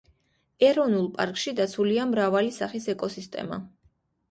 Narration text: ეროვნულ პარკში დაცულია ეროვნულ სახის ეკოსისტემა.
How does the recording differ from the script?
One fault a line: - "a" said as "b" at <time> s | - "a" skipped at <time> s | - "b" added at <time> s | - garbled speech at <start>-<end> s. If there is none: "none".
- "ეროვნულ" said as "მრავალი" at 2.1 s